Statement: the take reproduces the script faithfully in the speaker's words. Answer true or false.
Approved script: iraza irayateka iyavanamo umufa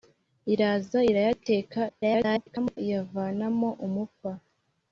false